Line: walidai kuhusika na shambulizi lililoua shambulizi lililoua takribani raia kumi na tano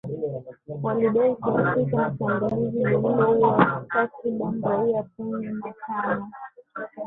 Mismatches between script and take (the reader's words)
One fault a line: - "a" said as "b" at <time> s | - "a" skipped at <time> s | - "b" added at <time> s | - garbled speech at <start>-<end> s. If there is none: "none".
- "shambulizi lililoua" skipped at 3.9 s